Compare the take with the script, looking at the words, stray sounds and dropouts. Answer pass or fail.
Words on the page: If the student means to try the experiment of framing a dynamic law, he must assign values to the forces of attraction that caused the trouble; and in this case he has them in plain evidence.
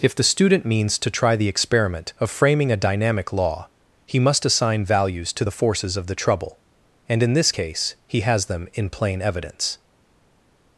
fail